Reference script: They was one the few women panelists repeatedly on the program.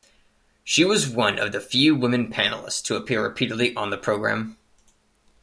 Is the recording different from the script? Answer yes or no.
yes